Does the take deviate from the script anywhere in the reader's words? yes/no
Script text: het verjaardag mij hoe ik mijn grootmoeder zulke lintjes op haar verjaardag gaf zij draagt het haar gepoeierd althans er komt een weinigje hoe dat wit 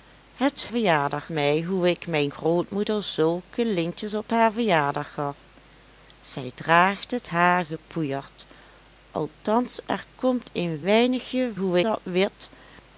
no